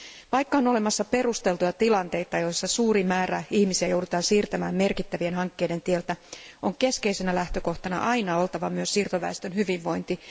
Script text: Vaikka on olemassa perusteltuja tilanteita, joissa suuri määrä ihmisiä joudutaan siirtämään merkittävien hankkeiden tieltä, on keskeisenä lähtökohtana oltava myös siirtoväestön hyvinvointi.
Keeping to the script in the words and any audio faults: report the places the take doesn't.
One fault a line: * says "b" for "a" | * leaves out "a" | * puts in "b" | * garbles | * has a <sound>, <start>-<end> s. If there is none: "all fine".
* puts in "aina"